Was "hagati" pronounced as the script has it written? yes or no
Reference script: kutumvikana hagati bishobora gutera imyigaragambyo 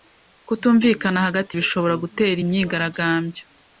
yes